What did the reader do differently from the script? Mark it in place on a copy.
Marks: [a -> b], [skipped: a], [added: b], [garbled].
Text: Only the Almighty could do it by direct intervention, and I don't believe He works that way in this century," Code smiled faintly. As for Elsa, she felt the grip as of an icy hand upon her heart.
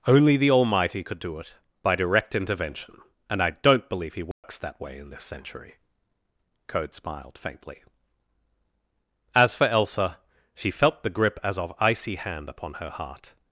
Only the Almighty could do it by direct intervention, and I don't believe He works that way in this century," Code smiled faintly. As for Elsa, she felt the grip as of [skipped: an] icy hand upon her heart.